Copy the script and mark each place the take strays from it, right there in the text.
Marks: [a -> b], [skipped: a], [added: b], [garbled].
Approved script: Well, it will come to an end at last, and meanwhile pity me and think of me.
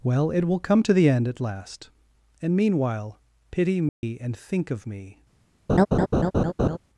Well, it will come to [an -> the] end at last, and meanwhile pity me and think of me.